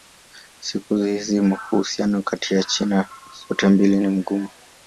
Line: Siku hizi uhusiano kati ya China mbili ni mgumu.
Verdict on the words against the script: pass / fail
fail